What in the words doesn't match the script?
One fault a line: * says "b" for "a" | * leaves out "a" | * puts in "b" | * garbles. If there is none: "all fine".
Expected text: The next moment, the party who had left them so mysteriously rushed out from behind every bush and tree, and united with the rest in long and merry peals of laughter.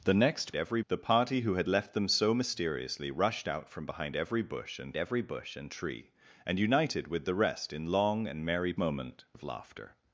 * says "every" for "moment"
* puts in "every bush and"
* says "moment" for "peals"